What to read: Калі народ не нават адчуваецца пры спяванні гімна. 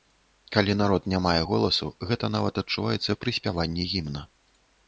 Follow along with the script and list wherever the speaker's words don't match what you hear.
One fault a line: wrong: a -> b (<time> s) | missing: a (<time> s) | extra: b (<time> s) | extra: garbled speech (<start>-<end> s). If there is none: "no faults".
extra: мае голасу гэта (1.2 s)